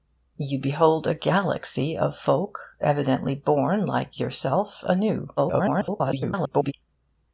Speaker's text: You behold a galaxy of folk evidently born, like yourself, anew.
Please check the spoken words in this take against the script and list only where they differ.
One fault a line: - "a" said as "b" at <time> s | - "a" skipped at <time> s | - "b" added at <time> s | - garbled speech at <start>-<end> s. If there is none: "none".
- garbled speech at 5.4-6.7 s